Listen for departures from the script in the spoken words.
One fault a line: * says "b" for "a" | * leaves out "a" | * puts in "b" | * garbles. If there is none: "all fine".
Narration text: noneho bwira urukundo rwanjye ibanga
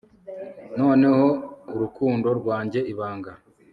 * leaves out "bwira"